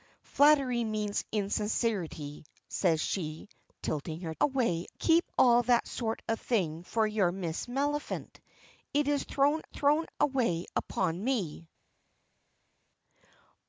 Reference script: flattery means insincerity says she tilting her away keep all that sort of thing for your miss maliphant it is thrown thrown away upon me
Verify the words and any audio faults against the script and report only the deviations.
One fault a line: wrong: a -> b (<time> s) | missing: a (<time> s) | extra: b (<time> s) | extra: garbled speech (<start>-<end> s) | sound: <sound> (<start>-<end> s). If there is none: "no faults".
no faults